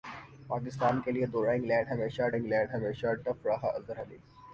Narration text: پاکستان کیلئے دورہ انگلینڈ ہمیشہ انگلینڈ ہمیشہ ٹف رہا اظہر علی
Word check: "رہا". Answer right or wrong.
right